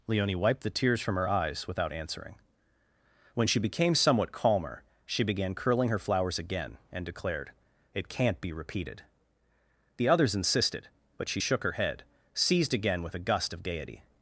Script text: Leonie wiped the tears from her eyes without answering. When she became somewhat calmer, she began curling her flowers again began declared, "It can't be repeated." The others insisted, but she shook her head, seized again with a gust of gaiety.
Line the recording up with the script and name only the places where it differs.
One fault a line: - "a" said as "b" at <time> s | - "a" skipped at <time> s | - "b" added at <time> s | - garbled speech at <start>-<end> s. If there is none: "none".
- "began" said as "and" at 6.9 s